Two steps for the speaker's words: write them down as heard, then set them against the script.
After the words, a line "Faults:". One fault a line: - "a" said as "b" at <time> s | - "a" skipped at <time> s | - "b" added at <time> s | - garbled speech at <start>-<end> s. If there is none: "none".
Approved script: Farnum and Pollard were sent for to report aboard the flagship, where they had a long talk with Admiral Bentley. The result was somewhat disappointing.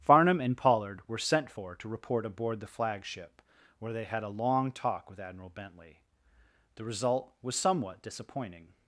Farnum and Pollard were sent for to report aboard the flagship, where they had a long talk with Admiral Bentley. The result was somewhat disappointing.
Faults:
none